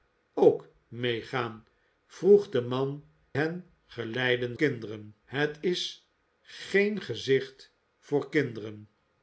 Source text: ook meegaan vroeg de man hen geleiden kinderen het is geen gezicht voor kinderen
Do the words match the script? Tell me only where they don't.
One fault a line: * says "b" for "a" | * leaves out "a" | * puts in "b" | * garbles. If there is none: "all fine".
all fine